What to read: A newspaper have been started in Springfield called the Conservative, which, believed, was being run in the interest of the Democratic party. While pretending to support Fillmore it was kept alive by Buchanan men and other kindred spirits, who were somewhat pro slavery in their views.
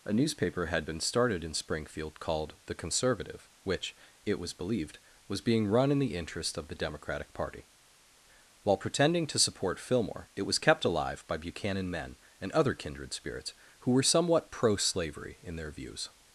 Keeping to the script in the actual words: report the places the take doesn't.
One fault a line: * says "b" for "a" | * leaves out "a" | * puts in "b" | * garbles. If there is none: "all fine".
* says "had" for "have"
* puts in "it was"